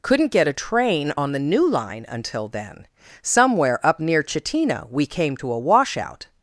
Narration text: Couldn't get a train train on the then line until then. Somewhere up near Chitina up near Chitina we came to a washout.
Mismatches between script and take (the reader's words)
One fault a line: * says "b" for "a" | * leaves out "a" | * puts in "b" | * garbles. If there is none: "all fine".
* leaves out "train"
* says "new" for "then"
* leaves out "up near Chitina"